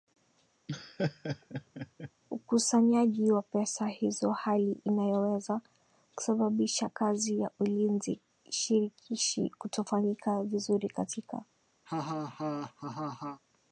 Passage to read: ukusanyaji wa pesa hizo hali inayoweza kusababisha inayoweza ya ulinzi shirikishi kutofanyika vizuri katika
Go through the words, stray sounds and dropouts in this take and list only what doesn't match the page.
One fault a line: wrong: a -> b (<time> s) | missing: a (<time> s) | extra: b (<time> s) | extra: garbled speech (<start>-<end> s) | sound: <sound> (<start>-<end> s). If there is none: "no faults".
sound: laugh (0.7-2.1 s)
wrong: inayoweza -> kazi (6.9 s)
sound: laugh (11.9-13.4 s)